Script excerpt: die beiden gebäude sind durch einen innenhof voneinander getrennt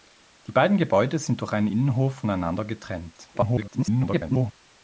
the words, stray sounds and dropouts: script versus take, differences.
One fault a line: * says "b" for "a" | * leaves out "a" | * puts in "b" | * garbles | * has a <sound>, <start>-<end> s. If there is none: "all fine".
* garbles